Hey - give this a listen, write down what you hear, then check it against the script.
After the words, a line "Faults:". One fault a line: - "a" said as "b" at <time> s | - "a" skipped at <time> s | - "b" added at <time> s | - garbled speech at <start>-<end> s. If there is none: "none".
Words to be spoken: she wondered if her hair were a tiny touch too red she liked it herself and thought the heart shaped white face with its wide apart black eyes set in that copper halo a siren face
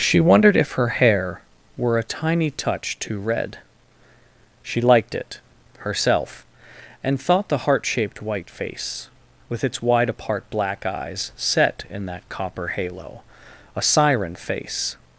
she wondered if her hair were a tiny touch too red she liked it herself and thought the heart shaped white face with its wide apart black eyes set in that copper halo a siren face
Faults:
none